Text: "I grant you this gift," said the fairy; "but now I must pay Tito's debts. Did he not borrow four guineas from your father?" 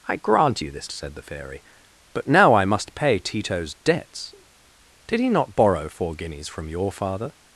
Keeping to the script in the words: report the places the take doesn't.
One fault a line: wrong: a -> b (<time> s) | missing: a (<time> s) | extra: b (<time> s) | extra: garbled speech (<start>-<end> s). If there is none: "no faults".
missing: gift (0.9 s)